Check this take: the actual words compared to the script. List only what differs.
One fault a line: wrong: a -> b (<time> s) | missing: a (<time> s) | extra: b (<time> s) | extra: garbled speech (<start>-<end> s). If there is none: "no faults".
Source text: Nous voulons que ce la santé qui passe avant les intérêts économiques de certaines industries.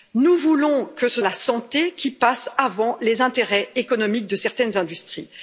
no faults